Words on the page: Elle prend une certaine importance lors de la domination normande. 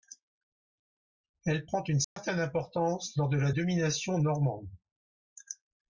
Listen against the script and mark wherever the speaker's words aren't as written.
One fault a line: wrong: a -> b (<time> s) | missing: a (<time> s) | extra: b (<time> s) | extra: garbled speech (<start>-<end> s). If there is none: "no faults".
no faults